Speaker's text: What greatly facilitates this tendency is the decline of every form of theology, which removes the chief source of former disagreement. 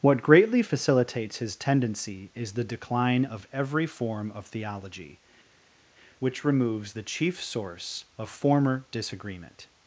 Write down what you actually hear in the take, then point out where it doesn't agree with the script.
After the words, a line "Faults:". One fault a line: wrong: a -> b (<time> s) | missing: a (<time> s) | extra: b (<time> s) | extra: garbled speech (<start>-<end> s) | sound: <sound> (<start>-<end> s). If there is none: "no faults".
What greatly facilitates his tendency is the decline of every form of theology, which removes the chief source of former disagreement.
Faults:
wrong: this -> his (1.4 s)